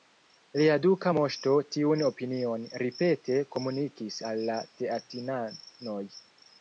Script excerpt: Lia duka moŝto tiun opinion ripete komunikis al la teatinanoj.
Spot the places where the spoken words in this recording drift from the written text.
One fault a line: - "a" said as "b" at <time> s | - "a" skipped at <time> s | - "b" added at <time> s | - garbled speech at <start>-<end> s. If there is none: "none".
none